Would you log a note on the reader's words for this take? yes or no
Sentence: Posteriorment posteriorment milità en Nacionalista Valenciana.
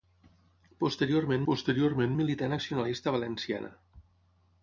no